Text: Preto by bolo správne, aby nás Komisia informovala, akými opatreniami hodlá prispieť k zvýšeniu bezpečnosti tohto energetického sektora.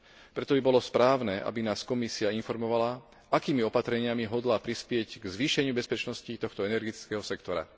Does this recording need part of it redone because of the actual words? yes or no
no